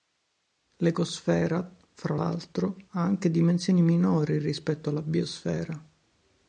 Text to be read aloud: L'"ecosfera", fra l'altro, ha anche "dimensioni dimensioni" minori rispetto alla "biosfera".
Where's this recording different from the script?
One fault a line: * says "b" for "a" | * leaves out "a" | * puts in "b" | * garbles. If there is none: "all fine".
* leaves out "dimensioni"